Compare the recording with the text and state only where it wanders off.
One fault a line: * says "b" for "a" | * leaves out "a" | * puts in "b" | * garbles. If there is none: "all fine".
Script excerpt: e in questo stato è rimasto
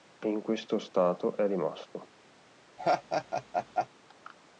all fine